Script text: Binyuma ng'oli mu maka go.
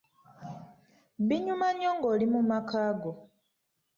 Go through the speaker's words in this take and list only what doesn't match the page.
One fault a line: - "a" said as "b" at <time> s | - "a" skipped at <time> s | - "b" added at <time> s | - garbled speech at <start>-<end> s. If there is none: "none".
- "nnyo" added at 1.7 s